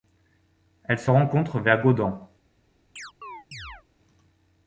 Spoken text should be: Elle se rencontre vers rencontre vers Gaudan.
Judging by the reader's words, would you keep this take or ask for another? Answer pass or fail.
fail